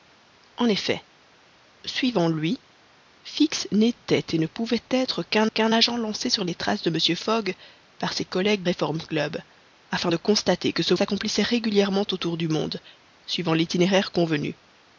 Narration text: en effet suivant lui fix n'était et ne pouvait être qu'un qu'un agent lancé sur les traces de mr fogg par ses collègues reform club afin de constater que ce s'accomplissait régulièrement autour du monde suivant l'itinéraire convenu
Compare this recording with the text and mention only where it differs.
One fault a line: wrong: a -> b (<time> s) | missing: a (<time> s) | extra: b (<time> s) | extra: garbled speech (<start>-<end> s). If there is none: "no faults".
no faults